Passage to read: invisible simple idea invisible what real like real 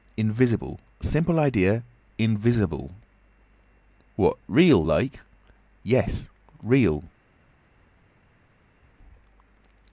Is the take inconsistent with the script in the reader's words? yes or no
yes